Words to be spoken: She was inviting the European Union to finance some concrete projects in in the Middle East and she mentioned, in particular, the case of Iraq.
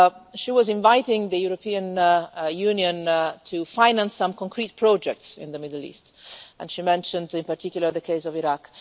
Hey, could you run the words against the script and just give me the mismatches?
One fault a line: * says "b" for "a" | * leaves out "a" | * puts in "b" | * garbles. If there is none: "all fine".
* leaves out "in"